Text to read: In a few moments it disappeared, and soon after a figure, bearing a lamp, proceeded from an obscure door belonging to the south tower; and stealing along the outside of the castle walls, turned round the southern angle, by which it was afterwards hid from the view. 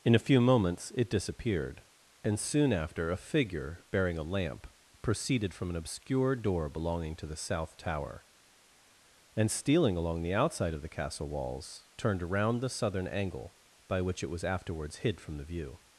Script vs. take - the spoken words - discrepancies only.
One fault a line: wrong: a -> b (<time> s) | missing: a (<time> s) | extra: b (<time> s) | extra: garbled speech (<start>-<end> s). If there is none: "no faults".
wrong: round -> around (12.2 s)